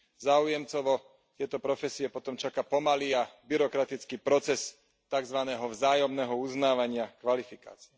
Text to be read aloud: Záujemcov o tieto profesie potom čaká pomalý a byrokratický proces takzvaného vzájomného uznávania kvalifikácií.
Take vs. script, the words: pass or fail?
pass